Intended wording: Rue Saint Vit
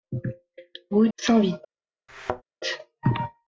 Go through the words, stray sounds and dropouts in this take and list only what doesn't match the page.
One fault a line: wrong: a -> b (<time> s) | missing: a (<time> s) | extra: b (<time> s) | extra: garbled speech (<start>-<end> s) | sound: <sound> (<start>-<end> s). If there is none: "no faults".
sound: thud (2.1-2.4 s)